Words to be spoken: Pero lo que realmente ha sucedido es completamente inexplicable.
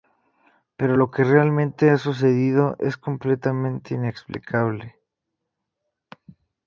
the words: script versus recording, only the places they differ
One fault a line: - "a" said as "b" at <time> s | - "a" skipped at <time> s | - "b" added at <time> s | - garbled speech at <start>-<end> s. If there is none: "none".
none